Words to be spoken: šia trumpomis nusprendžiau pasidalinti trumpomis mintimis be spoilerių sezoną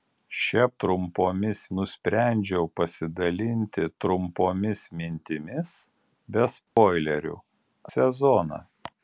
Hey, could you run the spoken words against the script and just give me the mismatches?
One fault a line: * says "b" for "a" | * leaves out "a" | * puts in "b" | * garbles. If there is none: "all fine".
all fine